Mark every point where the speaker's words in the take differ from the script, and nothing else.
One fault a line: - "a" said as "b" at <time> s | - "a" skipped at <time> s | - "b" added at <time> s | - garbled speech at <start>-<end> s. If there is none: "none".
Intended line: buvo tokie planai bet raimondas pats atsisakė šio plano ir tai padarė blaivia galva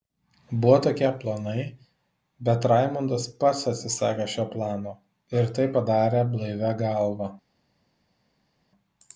none